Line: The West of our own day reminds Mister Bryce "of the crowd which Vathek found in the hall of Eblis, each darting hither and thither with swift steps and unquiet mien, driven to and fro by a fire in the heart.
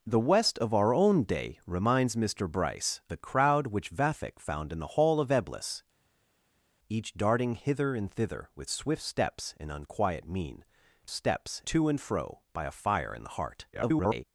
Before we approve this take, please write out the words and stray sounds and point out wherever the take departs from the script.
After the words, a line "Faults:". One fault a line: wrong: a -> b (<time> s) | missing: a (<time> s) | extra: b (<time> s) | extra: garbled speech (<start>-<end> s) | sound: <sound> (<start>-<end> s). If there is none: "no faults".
The West of our own day reminds Mister Bryce "the crowd which Vathek found in the hall of Eblis, each darting hither and thither with swift steps and unquiet mien, steps to and fro by a fire in the heart. [garbled]
Faults:
missing: of (3.0 s)
wrong: driven -> steps (11.1 s)
extra: garbled speech (13.7-14.2 s)